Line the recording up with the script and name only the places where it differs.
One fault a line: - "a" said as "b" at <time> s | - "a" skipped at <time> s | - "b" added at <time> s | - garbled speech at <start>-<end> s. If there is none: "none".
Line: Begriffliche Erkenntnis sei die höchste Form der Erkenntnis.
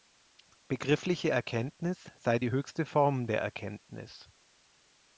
none